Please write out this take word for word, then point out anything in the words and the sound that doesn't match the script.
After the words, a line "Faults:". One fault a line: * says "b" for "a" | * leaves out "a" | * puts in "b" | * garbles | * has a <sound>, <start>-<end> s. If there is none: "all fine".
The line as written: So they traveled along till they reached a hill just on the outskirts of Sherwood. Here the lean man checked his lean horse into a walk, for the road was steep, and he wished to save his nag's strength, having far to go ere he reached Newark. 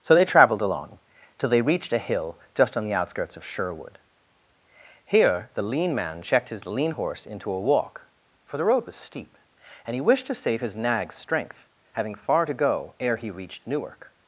So they traveled along till they reached a hill just on the outskirts of Sherwood. Here the lean man checked his lean horse into a walk, for the road was steep, and he wished to save his nag's strength, having far to go ere he reached Newark.
Faults:
all fine